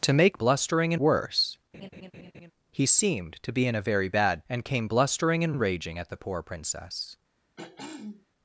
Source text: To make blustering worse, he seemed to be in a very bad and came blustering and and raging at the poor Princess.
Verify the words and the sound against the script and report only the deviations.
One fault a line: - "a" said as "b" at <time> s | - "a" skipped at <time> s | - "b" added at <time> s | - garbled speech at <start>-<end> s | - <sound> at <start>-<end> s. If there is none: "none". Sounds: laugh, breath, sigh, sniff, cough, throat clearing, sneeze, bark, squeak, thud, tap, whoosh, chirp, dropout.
- laugh at 1.7-2.5 s
- throat clearing at 7.6-8.3 s